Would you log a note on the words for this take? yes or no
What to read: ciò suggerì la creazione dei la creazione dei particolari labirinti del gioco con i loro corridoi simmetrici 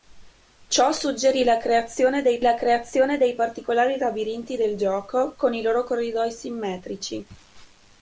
no